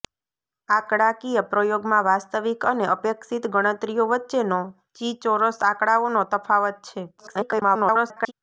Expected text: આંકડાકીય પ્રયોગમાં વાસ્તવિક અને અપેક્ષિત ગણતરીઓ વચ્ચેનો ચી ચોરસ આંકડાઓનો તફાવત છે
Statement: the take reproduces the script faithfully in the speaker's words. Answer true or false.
false